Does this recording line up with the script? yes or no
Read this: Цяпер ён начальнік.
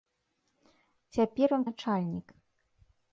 yes